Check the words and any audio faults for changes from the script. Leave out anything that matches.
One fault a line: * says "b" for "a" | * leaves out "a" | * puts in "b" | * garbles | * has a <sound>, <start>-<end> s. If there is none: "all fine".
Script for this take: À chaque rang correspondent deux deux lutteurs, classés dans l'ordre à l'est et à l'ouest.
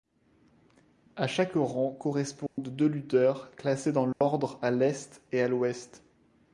* has a dropout, 2.5-2.6 s
* leaves out "deux"
* has a dropout, 4.1-4.2 s